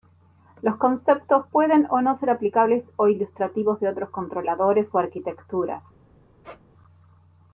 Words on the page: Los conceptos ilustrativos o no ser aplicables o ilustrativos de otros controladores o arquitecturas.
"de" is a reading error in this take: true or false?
false